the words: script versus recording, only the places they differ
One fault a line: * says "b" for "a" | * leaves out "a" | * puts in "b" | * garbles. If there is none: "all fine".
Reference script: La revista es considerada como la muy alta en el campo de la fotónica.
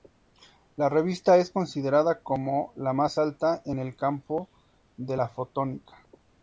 * says "más" for "muy"